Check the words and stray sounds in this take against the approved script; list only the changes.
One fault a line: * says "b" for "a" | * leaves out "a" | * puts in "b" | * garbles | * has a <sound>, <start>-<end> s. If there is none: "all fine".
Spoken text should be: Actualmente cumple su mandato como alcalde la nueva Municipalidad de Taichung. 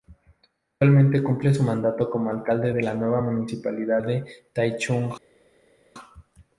* puts in "de"